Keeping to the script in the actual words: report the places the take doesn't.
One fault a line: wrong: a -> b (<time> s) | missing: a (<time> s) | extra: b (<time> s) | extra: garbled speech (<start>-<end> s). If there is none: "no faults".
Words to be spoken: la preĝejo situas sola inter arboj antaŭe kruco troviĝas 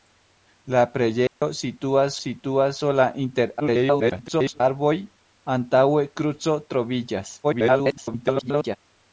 extra: situas (2.2 s)
extra: garbled speech (3.6-4.6 s)
extra: garbled speech (7.4-8.8 s)